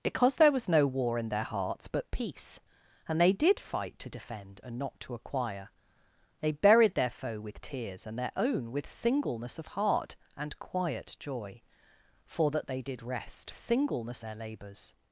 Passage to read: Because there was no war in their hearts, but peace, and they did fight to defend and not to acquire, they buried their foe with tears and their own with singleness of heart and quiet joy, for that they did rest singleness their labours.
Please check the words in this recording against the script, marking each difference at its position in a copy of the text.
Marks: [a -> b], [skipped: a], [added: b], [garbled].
Because there was no war in their hearts, but peace, and they did fight to defend and not to acquire, they buried their foe with tears and their own with singleness of heart and quiet joy, for that they did rest singleness their labours.